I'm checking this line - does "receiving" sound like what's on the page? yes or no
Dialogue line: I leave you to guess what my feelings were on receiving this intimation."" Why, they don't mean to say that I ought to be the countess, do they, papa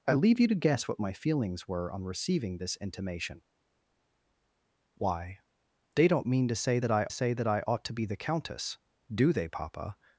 yes